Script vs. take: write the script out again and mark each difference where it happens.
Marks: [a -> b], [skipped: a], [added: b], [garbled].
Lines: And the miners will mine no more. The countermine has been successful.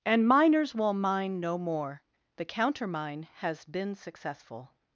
And [skipped: the] miners will mine no more. The countermine has been successful.